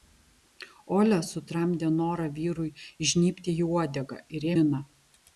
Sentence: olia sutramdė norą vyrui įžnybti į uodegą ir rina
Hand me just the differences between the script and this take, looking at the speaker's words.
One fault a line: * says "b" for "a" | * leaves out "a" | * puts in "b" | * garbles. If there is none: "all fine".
all fine